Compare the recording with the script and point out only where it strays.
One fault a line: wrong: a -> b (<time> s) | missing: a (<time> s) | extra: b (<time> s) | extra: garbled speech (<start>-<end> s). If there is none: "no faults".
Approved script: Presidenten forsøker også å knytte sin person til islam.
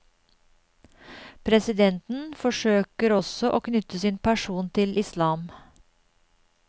no faults